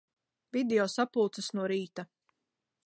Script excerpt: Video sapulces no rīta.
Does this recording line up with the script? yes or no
yes